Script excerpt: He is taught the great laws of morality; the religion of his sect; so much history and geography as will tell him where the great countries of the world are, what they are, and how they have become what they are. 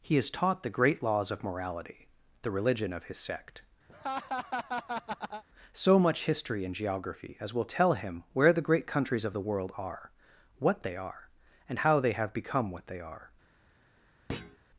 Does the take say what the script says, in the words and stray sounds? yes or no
no